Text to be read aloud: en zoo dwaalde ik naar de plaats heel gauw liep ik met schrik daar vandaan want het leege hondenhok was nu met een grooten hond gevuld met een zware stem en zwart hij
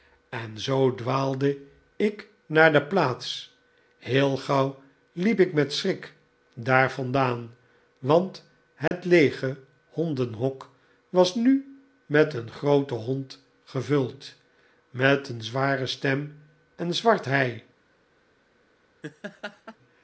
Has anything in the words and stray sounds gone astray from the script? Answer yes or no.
yes